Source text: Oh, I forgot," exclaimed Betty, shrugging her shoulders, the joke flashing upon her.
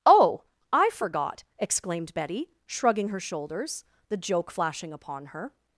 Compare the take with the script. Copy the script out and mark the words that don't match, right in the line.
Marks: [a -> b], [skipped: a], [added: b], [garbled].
Oh, I forgot," exclaimed Betty, shrugging her shoulders, the joke flashing upon her.